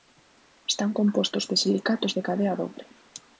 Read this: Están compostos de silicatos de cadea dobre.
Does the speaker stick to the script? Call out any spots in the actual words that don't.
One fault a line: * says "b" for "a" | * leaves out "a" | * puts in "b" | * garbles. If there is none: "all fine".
all fine